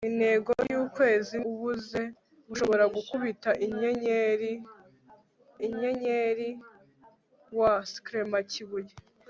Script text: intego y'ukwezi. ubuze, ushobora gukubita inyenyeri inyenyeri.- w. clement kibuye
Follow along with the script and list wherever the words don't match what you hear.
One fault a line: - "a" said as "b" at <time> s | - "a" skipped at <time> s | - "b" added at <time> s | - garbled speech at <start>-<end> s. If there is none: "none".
none